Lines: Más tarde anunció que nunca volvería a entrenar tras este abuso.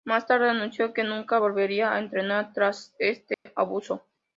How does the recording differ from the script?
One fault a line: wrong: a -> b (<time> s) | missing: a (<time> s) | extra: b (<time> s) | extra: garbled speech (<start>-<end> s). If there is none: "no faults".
no faults